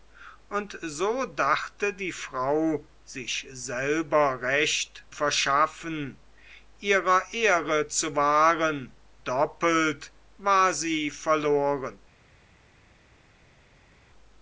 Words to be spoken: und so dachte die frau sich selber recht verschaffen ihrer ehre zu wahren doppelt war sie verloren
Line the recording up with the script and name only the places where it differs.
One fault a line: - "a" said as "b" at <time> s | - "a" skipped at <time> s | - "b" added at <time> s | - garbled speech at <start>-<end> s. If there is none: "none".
none